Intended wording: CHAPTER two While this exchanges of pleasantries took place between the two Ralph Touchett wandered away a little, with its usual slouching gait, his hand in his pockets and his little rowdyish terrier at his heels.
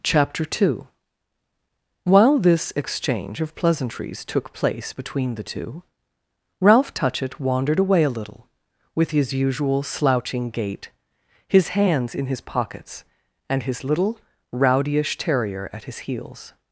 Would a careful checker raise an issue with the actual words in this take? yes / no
yes